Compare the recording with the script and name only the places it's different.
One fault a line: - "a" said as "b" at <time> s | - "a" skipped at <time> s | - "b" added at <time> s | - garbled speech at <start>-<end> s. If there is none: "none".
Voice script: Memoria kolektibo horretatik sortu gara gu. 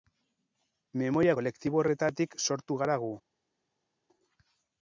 none